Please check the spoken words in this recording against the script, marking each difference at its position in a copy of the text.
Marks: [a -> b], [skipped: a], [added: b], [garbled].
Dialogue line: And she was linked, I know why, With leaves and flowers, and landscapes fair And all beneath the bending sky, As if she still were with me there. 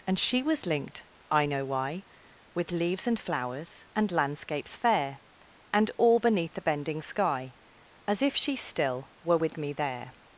And she was linked, I know why, With leaves and flowers, and landscapes fair And all beneath the bending sky, As if she still were with me there.